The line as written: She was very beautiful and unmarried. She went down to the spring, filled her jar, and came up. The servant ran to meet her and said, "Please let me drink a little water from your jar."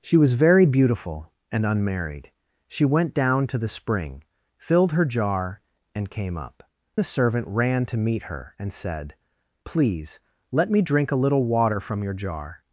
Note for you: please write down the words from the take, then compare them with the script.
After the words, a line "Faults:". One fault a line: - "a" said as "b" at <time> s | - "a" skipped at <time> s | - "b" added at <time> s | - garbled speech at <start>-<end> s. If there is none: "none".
She was very beautiful and unmarried. She went down to the spring, filled her jar, and came up. The servant ran to meet her and said, "Please let me drink a little water from your jar."
Faults:
none